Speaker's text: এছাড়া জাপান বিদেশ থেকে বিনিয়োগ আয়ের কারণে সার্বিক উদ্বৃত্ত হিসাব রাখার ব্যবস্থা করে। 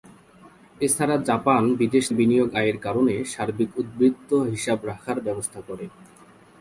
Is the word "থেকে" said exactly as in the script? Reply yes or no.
no